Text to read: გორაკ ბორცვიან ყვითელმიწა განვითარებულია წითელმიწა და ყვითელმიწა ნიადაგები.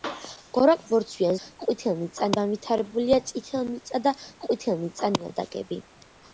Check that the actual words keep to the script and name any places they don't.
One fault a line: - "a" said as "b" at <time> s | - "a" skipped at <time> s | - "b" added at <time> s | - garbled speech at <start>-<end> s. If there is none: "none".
none